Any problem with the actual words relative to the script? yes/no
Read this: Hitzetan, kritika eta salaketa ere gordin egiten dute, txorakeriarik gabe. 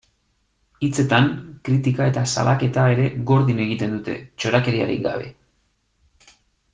no